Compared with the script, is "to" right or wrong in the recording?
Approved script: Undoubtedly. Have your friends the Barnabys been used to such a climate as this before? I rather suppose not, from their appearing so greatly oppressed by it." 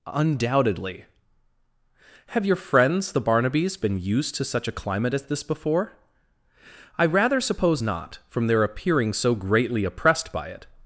right